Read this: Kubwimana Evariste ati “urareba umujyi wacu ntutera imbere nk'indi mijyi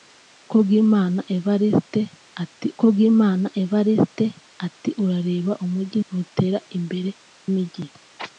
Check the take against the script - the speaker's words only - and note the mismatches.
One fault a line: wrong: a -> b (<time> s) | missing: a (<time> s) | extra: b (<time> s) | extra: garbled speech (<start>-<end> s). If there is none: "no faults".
extra: kubwimana Evariste ati (2.8 s)
missing: wacu (6.0 s)
missing: nk'indi (7.1 s)